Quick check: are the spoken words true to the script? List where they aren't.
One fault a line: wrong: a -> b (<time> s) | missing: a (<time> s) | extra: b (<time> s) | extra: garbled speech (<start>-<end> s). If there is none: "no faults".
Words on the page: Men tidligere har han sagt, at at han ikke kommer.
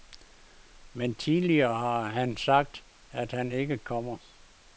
missing: at (3.3 s)